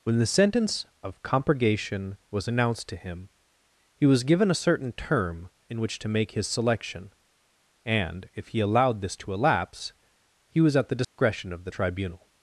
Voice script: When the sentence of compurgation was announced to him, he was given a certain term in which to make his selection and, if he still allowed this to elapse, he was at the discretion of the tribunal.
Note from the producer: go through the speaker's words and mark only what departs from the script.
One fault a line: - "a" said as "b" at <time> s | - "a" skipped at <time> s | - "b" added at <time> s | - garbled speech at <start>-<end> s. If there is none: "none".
- "still" skipped at 8.6 s